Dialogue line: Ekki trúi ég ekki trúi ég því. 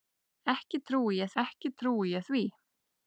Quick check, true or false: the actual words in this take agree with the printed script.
true